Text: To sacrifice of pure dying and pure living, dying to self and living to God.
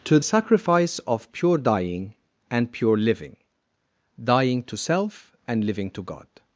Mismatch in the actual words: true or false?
false